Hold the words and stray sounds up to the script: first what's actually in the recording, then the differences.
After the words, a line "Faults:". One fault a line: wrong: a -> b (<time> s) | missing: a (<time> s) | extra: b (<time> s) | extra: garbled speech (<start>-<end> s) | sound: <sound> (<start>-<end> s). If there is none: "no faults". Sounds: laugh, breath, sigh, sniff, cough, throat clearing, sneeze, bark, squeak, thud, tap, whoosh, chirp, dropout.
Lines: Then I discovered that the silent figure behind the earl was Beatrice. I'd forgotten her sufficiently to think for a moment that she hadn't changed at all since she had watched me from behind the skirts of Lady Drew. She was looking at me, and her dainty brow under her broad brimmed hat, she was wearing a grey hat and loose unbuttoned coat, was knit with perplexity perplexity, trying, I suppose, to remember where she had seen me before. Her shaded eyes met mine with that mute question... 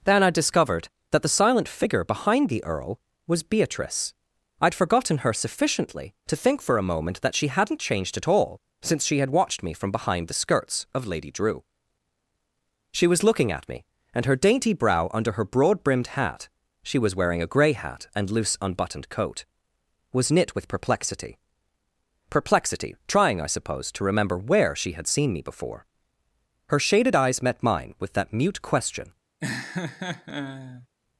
Then I discovered that the silent figure behind the earl was Beatrice. I'd forgotten her sufficiently to think for a moment that she hadn't changed at all since she had watched me from behind the skirts of Lady Drew. She was looking at me, and her dainty brow under her broad brimmed hat, she was wearing a grey hat and loose unbuttoned coat, was knit with perplexity perplexity, trying, I suppose, to remember where she had seen me before. Her shaded eyes met mine with that mute question...
Faults:
sound: laugh (29.4-30.9 s)